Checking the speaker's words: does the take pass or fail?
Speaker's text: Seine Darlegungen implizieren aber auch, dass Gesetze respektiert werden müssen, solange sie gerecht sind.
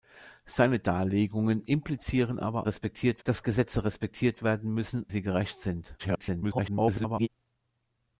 fail